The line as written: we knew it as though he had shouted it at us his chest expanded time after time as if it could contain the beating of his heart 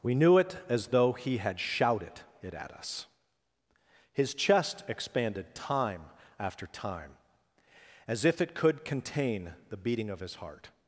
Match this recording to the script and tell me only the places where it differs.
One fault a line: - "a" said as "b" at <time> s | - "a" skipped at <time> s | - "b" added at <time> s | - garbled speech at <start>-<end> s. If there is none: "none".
none